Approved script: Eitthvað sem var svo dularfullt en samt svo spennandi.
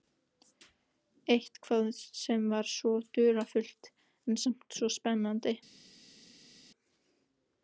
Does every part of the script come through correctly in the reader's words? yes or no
yes